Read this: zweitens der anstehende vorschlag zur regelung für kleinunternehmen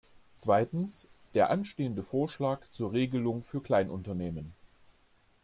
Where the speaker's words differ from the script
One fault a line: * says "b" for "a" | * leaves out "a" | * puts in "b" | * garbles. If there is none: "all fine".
all fine